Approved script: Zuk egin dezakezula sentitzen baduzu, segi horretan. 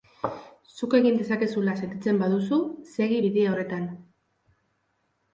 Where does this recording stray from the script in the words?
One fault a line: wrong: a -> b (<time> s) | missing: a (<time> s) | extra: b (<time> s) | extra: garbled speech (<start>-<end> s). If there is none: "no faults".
extra: bide (3.2 s)